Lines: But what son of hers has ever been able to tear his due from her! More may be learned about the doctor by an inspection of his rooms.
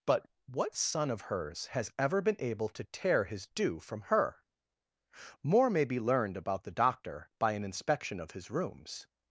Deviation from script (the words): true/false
false